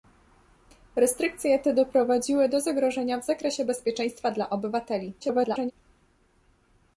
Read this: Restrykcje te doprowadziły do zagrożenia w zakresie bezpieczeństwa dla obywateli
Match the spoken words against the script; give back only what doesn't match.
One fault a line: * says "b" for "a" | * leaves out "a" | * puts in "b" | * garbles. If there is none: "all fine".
* garbles